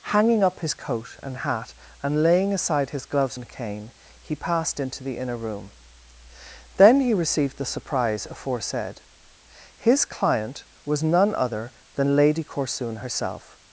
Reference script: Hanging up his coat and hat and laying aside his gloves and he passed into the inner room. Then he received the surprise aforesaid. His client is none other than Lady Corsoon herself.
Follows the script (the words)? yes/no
no